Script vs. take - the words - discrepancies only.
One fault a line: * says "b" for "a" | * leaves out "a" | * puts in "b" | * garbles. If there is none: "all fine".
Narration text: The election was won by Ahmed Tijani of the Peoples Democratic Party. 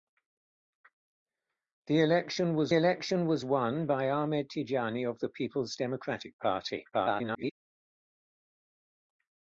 * puts in "election was"
* garbles